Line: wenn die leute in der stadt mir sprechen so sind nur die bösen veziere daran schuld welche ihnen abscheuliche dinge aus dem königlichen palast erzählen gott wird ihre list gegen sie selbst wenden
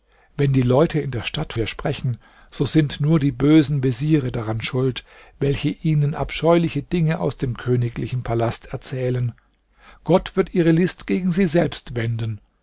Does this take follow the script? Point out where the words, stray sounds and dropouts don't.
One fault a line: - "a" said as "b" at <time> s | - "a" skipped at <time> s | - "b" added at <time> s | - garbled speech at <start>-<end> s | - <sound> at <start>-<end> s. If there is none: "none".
none